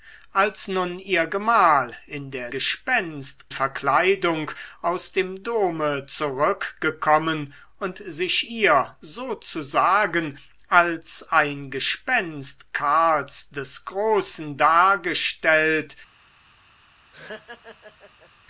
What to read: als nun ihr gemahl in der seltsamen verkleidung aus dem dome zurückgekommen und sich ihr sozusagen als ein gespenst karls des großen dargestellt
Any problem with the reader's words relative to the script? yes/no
yes